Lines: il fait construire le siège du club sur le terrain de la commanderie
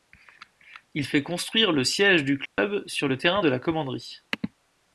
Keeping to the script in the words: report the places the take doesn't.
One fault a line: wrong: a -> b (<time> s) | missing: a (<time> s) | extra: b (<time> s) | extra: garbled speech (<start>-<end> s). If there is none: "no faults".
no faults